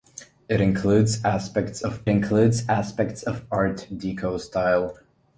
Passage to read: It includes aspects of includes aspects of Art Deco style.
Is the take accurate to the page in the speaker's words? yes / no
yes